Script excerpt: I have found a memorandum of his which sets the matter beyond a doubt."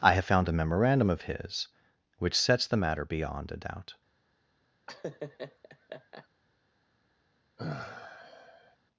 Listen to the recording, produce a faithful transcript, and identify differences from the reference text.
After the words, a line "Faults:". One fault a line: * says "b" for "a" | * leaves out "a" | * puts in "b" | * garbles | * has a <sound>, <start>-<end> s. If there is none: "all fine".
I have found a memorandum of his which sets the matter beyond a doubt."
Faults:
* has a laugh, 4.9-6.3 s
* has a sigh, 7.6-8.8 s